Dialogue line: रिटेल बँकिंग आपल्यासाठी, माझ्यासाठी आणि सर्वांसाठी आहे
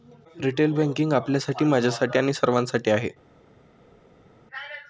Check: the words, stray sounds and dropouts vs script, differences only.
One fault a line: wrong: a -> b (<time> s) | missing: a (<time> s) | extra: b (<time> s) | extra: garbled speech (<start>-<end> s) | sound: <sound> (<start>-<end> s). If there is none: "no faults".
no faults